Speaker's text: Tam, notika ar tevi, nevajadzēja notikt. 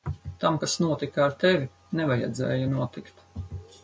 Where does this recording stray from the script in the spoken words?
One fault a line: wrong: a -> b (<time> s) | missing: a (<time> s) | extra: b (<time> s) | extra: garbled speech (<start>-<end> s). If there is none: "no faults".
extra: kas (0.6 s)